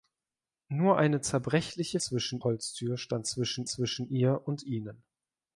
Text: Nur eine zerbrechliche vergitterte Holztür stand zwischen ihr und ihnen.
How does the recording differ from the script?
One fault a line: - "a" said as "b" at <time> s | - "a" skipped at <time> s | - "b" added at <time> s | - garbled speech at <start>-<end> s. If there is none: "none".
- "vergitterte" said as "zwischen" at 2.0 s
- "zwischen" added at 3.7 s